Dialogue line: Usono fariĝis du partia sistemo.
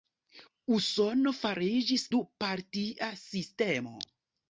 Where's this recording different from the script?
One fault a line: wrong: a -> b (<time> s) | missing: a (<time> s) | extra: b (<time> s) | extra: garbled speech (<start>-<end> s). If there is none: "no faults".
no faults